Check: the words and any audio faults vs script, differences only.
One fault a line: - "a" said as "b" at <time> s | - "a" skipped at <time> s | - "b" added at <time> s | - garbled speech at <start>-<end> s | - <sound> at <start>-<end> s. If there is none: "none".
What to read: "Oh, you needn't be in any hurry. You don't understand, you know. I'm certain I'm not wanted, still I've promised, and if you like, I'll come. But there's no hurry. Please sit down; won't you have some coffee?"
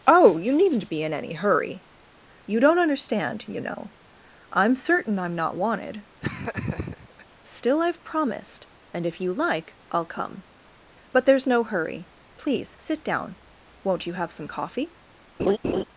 - laugh at 6.2-7.3 s
- laugh at 15.4-15.8 s